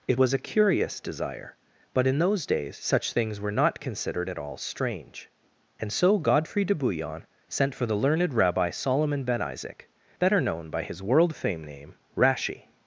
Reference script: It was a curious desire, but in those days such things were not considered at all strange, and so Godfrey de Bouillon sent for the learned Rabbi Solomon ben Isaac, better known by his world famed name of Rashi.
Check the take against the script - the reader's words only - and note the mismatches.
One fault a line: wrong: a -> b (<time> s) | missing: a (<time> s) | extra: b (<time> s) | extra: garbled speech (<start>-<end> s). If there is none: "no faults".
missing: of (12.0 s)